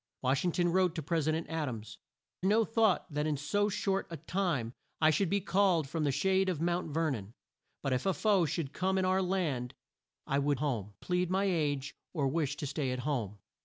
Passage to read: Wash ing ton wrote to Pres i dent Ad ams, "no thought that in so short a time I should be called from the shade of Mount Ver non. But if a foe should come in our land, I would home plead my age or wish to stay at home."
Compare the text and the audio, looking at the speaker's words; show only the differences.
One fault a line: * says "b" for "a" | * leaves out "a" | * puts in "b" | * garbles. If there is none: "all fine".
all fine